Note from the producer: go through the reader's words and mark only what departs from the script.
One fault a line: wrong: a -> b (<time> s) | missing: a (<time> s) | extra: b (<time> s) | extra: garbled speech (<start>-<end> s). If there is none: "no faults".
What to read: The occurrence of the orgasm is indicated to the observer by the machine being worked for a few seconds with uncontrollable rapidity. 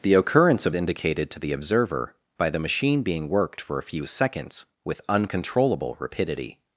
missing: the orgasm is (0.7 s)